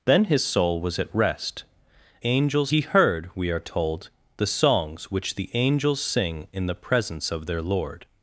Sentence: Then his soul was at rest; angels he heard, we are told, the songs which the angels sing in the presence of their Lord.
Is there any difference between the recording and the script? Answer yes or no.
no